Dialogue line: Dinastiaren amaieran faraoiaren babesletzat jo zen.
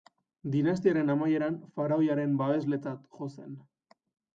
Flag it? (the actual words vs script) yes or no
no